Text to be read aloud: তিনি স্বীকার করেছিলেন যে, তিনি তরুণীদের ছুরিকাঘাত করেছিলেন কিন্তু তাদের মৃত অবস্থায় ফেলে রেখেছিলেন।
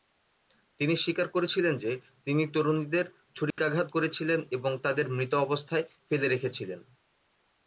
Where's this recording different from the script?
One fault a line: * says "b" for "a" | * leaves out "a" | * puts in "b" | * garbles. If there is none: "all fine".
* says "এবং" for "কিন্তু"